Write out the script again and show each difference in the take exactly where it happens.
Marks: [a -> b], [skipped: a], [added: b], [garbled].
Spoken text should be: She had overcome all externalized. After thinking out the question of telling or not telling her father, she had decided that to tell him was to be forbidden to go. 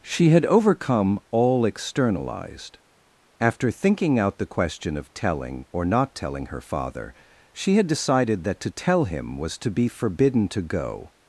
She had overcome all externalized. After thinking out the question of telling or not telling her father, she had decided that to tell him was to be forbidden to go.